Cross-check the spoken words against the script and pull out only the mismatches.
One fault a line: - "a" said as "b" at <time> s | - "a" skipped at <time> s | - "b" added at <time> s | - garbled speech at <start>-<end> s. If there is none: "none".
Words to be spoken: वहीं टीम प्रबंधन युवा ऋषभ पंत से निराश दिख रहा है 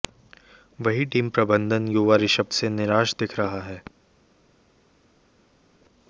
- "पंत" skipped at 2.5 s